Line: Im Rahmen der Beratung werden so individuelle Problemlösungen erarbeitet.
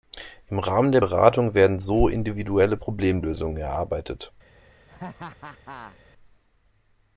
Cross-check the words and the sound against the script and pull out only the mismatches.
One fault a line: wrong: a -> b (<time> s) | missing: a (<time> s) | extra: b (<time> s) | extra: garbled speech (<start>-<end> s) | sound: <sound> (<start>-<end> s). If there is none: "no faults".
sound: laugh (4.9-6.0 s)